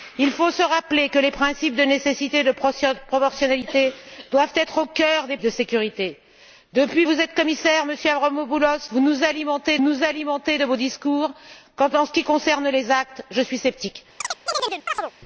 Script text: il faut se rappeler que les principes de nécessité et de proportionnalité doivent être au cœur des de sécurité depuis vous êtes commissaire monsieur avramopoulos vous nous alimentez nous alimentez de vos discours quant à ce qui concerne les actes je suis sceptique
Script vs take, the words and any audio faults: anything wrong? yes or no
yes